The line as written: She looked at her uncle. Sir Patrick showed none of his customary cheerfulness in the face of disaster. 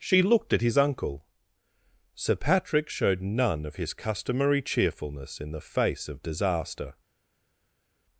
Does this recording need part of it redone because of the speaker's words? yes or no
yes